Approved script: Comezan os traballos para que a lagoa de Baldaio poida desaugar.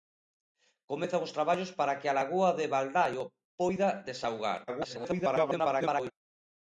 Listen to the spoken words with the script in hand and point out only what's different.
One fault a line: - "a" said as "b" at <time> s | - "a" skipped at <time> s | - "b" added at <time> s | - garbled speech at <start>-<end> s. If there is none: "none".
- garbled speech at 4.7-6.1 s